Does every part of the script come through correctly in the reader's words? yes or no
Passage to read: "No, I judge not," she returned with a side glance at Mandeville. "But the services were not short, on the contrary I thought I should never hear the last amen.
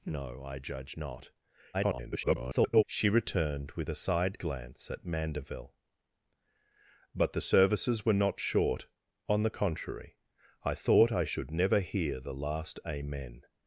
no